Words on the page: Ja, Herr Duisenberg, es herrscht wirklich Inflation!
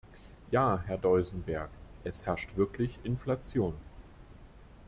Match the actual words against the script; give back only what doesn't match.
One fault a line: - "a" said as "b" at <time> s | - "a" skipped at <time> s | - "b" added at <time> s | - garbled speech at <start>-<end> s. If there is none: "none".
none